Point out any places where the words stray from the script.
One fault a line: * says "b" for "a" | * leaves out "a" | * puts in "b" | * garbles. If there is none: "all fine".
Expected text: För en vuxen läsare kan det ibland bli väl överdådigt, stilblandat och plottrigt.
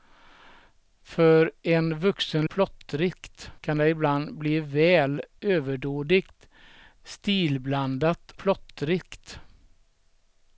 * says "plottrigt" for "läsare"
* leaves out "och"